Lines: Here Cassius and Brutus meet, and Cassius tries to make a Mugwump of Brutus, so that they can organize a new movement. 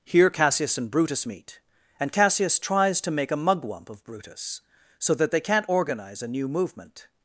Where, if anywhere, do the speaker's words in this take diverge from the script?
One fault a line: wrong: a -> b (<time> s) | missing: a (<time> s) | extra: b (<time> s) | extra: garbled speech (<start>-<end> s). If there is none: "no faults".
wrong: can -> can't (5.4 s)